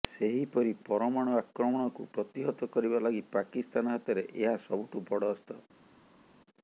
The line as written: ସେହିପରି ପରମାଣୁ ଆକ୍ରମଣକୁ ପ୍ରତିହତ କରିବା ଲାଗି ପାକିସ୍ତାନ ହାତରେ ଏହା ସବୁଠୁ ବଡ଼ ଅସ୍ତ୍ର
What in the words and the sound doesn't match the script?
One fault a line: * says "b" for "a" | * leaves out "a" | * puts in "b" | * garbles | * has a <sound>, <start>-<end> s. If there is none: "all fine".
all fine